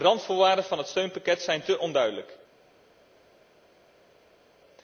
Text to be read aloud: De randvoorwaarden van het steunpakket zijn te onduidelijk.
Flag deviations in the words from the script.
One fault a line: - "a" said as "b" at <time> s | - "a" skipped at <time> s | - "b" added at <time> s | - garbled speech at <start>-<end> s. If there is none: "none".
none